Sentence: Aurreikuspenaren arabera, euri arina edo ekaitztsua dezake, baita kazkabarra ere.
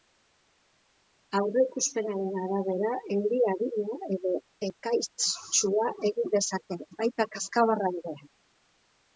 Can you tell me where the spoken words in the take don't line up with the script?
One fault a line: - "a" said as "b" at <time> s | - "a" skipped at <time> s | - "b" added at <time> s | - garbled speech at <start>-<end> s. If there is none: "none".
- "egin" added at 6.1 s